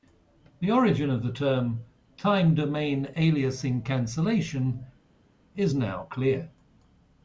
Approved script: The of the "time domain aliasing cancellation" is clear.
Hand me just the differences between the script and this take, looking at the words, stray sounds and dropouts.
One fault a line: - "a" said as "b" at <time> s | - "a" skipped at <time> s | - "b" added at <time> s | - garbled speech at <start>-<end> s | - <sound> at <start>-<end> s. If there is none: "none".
- "origin" added at 0.7 s
- "term" added at 1.3 s
- "now" added at 5.7 s